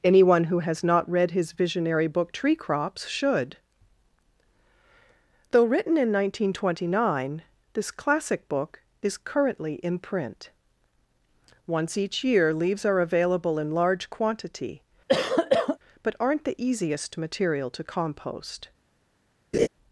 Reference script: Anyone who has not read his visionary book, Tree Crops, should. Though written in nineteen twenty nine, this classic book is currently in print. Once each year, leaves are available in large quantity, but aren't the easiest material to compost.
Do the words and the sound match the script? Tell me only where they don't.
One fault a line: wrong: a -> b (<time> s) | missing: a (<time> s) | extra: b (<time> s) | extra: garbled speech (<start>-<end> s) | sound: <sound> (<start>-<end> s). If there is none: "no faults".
sound: cough (15.1-15.8 s)
sound: laugh (19.5-19.7 s)